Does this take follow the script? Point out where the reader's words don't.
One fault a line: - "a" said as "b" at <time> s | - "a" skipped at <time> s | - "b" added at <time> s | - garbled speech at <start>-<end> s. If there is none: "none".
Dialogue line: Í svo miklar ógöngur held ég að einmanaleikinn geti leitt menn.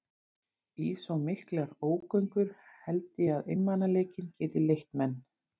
none